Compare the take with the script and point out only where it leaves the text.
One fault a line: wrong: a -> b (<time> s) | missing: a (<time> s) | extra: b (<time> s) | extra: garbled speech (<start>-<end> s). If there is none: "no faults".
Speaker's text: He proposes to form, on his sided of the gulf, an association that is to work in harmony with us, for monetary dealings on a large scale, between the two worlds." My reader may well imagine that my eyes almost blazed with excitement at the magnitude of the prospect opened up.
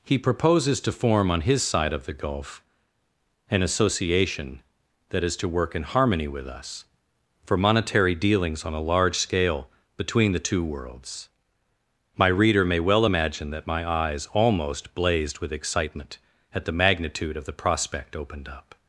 wrong: sided -> side (1.6 s)